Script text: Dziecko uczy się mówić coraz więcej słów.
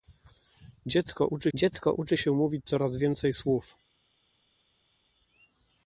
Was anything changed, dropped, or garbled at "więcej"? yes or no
no